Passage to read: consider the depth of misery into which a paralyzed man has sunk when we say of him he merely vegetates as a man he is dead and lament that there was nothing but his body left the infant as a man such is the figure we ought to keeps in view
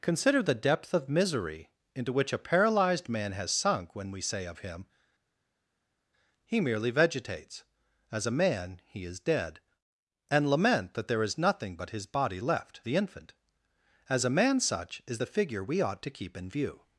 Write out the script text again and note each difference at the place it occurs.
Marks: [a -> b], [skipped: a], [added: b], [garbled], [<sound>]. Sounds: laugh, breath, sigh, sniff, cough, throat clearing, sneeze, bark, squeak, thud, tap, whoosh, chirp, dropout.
consider the depth of misery into which a paralyzed man has sunk when we say of him he merely vegetates as a man he is dead and lament that there [was -> is] nothing but his body left the infant as a man such is the figure we ought to [keeps -> keep] in view